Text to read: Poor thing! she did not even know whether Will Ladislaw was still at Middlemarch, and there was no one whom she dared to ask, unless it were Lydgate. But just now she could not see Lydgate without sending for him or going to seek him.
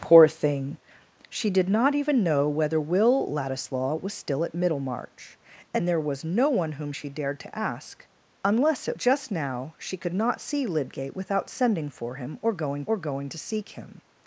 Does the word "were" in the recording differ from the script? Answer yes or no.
yes